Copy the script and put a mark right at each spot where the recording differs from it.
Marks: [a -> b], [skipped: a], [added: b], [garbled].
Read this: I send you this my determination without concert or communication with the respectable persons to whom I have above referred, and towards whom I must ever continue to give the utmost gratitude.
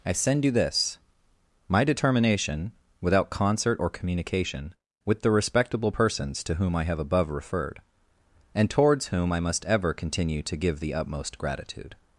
I send you this my determination without concert or communication with the respectable persons to whom I have above referred, and towards whom I must ever continue to give the utmost gratitude.